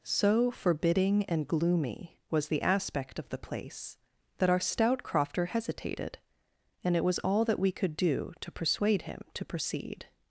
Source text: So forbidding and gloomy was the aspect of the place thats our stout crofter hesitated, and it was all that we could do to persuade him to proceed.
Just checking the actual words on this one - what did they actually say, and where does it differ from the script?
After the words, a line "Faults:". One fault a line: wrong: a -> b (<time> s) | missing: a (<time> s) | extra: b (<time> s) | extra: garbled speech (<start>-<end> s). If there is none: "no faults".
So forbidding and gloomy was the aspect of the place that our stout crofter hesitated, and it was all that we could do to persuade him to proceed.
Faults:
wrong: thats -> that (4.4 s)